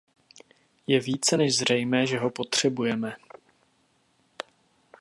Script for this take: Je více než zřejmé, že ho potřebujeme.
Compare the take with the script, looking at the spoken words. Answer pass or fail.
pass